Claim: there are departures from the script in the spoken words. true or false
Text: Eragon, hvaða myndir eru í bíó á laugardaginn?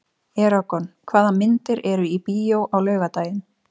false